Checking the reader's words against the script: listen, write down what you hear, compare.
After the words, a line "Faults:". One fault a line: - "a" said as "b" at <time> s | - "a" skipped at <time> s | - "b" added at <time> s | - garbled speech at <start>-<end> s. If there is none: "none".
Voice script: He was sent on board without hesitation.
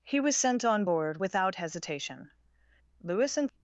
He was sent on board without hesitation. Lewis and
Faults:
- "Lewis and" added at 3.0 s